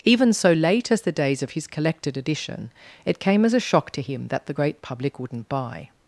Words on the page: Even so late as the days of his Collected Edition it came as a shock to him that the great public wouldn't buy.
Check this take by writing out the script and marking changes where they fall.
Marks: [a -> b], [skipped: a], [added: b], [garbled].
Even so late as the days of his Collected Edition it came as a shock to him that the great public wouldn't buy.